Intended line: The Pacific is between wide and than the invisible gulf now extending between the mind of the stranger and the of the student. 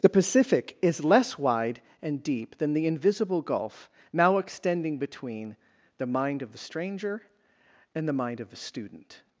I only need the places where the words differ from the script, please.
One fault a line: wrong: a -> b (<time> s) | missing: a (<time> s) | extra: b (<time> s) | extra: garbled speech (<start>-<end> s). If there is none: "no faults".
wrong: between -> less (1.0 s)
extra: deep (2.2 s)
extra: mind (8.1 s)